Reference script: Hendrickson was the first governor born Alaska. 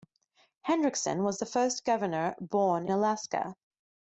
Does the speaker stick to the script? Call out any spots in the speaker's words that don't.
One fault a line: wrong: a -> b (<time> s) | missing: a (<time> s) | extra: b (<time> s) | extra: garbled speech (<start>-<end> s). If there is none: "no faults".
no faults